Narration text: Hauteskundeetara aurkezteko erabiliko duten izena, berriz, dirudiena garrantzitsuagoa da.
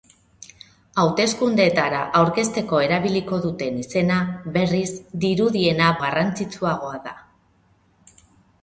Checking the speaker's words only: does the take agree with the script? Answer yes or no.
yes